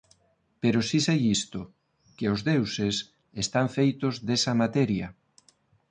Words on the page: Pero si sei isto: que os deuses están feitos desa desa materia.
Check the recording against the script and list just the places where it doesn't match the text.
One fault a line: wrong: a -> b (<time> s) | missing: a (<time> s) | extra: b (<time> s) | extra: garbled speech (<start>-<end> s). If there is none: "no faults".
missing: desa (4.5 s)